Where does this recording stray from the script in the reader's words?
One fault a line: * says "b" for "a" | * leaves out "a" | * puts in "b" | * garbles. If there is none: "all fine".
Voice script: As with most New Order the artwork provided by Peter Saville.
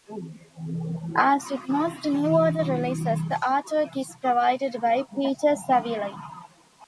* puts in "releases"
* puts in "is"